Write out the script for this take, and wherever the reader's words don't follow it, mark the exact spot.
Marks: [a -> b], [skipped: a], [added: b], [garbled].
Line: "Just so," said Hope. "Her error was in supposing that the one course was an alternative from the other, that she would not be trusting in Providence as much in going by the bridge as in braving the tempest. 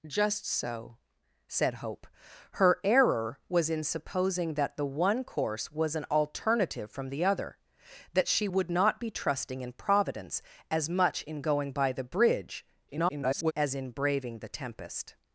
"Just so," said Hope. "Her error was in supposing that the one course was an alternative from the other, that she would not be trusting in Providence as much in going by the bridge [garbled] as in braving the tempest.